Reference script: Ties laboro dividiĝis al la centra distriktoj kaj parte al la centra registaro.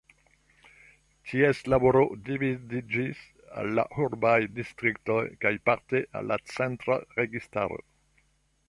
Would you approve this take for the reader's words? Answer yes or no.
no